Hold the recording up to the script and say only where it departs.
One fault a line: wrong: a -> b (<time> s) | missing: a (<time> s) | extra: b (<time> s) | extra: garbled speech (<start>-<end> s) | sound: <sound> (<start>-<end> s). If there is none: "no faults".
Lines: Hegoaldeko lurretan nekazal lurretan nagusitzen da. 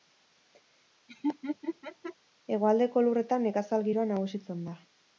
sound: laugh (1.1-2.1 s)
wrong: lurretan -> giroa (3.9 s)